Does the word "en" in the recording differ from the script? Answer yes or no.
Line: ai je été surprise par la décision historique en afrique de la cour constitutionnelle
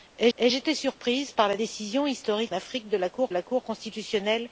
yes